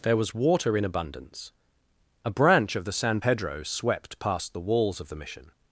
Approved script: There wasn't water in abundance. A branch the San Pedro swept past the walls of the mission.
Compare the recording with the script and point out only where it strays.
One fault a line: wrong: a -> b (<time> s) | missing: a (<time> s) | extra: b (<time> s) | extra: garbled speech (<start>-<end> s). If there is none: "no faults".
wrong: wasn't -> was (0.2 s)
extra: of (2.8 s)